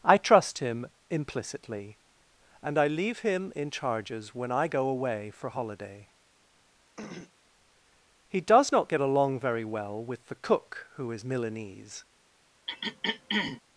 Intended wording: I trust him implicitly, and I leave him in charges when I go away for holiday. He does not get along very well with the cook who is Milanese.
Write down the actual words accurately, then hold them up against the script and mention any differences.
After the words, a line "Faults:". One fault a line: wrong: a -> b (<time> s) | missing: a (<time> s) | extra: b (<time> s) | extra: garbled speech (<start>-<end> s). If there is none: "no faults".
I trust him implicitly, and I leave him in charges when I go away for holiday. He does not get along very well with the cook who is Milanese.
Faults:
no faults